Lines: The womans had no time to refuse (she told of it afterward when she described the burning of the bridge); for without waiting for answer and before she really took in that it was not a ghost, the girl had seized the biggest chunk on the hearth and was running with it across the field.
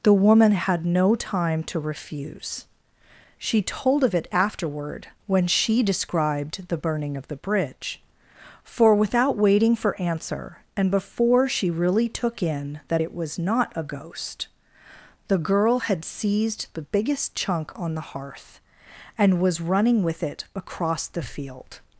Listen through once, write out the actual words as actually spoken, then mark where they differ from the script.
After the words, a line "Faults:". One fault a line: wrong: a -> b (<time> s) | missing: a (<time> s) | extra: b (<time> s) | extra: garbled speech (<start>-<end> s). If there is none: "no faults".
The woman had no time to refuse (she told of it afterward when she described the burning of the bridge); for without waiting for answer and before she really took in that it was not a ghost, the girl had seized the biggest chunk on the hearth and was running with it across the field.
Faults:
wrong: womans -> woman (0.1 s)